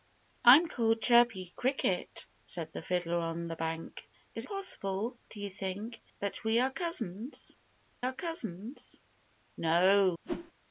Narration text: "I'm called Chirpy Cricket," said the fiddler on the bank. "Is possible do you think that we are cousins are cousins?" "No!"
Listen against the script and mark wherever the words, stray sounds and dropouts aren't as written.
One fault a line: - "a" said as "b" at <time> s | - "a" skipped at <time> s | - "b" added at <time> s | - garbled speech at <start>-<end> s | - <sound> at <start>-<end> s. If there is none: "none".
- whoosh at 10.2-10.5 s